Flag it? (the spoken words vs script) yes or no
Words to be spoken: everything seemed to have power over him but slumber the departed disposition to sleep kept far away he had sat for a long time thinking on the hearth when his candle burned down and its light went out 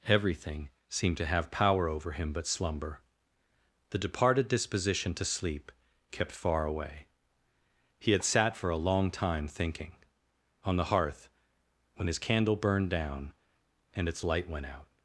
no